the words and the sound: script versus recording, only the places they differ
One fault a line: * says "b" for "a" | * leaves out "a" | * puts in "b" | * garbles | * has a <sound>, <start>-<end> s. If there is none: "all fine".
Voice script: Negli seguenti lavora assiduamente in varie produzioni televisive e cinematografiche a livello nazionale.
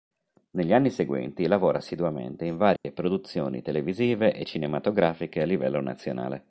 * puts in "anni"
* has a dropout, 2.8-2.8 s